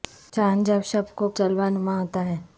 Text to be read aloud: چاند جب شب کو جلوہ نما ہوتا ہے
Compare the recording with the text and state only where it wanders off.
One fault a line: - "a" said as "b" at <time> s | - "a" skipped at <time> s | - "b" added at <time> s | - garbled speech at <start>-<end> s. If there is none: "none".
none